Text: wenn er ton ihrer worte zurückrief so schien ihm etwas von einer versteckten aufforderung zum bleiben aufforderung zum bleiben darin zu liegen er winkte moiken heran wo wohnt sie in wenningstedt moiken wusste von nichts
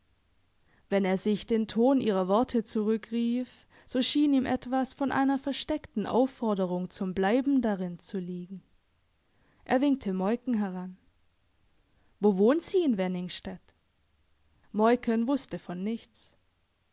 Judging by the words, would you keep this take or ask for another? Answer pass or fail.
fail